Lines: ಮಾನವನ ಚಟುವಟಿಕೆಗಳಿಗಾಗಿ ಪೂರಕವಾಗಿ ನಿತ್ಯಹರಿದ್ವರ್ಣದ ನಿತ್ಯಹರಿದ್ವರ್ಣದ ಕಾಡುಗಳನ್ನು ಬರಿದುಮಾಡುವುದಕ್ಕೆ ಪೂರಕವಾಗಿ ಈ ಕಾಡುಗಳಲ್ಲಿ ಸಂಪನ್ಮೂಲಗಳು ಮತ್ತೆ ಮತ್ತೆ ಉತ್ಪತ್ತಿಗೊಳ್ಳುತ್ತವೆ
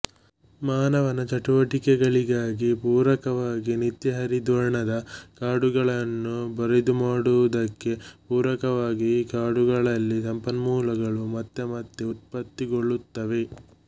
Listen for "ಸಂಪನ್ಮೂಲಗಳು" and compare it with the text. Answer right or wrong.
right